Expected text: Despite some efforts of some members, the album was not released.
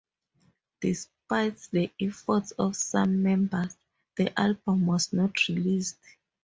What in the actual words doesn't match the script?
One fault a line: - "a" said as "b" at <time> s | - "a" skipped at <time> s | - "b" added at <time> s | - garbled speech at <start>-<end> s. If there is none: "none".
- "some" said as "the" at 1.7 s